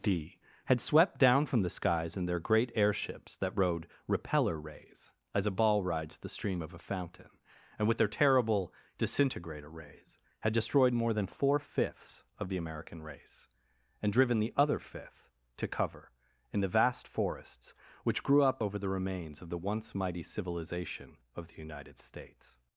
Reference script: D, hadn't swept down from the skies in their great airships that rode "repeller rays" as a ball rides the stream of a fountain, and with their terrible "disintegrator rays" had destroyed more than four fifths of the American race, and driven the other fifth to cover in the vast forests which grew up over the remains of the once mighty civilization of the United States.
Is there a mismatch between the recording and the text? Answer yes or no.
yes